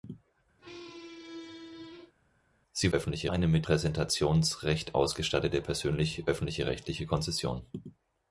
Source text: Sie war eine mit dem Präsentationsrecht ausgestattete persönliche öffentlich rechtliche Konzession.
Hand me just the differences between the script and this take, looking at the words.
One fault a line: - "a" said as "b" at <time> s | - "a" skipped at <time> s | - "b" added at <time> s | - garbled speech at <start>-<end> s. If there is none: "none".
- "war" said as "öffentlich" at 2.9 s
- "dem" skipped at 3.6 s